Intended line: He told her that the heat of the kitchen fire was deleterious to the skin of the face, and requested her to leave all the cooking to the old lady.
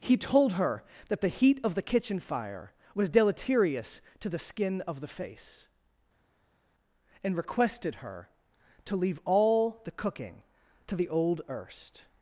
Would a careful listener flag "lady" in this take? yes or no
yes